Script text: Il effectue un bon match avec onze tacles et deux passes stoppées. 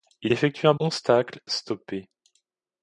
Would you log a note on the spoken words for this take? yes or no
yes